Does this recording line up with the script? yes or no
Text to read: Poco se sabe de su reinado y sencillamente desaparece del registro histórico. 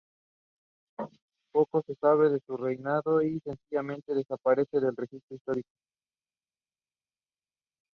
yes